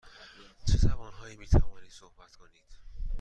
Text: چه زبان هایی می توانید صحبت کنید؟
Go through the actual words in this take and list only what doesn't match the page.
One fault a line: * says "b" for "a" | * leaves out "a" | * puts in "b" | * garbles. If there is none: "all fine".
all fine